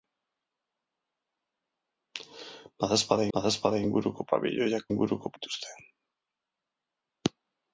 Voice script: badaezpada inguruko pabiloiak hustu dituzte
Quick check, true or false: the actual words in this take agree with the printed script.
false